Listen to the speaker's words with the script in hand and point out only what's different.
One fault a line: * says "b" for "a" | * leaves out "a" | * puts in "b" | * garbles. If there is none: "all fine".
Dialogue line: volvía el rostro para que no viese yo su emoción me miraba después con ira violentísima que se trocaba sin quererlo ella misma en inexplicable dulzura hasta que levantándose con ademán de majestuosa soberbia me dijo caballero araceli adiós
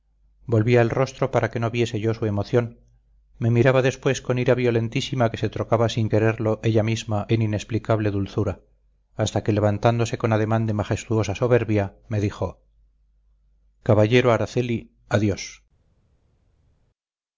all fine